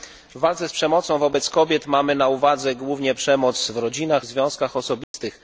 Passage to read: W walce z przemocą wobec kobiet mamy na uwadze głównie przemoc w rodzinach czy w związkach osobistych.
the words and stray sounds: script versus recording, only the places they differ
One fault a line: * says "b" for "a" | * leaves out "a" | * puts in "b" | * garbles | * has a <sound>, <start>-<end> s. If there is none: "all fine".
* leaves out "czy"
* has a dropout, 5.0-5.1 s